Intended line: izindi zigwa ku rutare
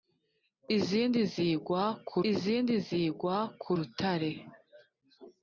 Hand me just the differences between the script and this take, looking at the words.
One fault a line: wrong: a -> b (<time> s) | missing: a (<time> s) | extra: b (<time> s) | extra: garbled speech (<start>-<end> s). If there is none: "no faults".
extra: izindi zigwa ku (2.3 s)